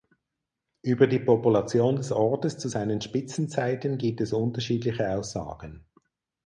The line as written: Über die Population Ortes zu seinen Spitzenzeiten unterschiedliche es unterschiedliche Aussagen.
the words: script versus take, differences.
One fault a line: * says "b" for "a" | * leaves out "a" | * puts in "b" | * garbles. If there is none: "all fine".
* puts in "des"
* says "gibt" for "unterschiedliche"